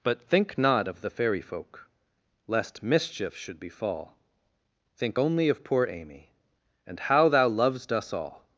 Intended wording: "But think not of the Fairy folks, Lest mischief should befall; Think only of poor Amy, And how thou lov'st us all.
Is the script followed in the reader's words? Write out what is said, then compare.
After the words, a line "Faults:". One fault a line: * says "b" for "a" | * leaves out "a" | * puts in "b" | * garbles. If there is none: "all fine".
"But think not of the Fairy folk, Lest mischief should befall; Think only of poor Amy, And how thou lov'st us all.
Faults:
* says "folk" for "folks"